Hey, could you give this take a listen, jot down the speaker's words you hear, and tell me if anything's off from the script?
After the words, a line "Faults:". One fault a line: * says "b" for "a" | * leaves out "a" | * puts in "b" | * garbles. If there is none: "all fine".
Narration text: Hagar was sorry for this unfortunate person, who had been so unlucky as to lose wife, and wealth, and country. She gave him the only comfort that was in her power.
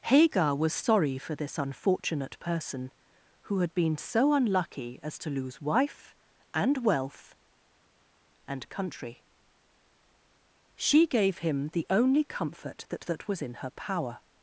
Hagar was sorry for this unfortunate person, who had been so unlucky as to lose wife, and wealth, and country. She gave him the only comfort that that was in her power.
Faults:
* puts in "that"